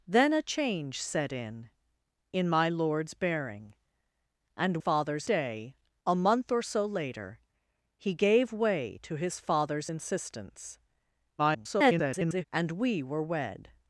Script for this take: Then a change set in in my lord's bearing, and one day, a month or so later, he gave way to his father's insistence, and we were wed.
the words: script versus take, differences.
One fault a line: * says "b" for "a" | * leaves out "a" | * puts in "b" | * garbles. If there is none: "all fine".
* says "father's" for "one"
* garbles